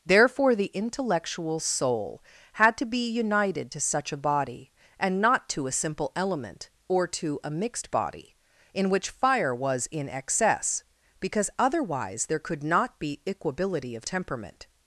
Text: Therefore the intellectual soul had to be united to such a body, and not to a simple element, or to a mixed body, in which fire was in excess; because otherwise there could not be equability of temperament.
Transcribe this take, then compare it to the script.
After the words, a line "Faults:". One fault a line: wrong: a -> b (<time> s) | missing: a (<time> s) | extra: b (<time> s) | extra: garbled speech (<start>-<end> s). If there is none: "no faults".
Therefore the intellectual soul had to be united to such a body, and not to a simple element, or to a mixed body, in which fire was in excess; because otherwise there could not be equability of temperament.
Faults:
no faults